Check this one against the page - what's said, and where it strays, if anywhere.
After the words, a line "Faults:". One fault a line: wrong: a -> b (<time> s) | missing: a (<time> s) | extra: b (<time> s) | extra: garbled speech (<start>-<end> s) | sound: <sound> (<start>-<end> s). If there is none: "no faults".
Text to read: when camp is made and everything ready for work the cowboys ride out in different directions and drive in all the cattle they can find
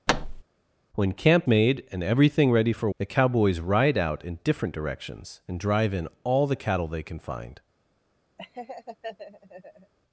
when camp made and everything ready for the cowboys ride out in different directions and drive in all the cattle they can find
Faults:
sound: thud (0.1-0.4 s)
missing: is (1.5 s)
missing: work (2.9 s)
sound: laugh (8.4-9.9 s)